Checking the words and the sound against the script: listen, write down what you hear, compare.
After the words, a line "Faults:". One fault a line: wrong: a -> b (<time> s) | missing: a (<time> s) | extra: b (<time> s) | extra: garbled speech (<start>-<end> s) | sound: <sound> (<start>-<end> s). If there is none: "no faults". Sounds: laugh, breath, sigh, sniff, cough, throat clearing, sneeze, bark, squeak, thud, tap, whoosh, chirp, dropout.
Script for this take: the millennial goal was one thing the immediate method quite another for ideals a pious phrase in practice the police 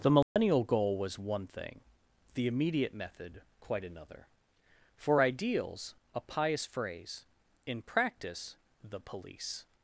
the millennial goal was one thing the immediate method quite another for ideals a pious phrase in practice the police
Faults:
sound: dropout (0.2-0.4 s)